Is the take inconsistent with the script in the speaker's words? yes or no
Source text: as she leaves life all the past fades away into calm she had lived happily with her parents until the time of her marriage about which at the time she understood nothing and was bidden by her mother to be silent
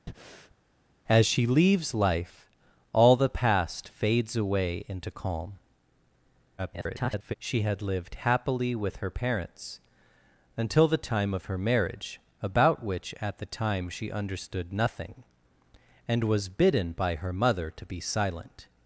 yes